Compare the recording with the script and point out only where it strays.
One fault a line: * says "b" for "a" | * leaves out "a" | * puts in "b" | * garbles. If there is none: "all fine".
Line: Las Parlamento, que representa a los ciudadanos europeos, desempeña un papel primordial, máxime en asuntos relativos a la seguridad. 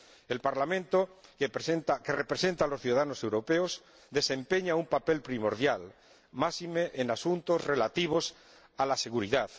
* says "El" for "Las"